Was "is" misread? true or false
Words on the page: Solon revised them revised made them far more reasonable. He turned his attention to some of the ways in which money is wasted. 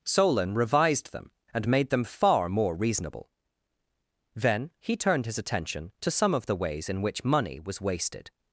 true